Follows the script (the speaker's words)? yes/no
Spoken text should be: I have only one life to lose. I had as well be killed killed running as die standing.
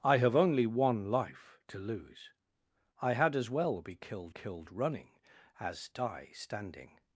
yes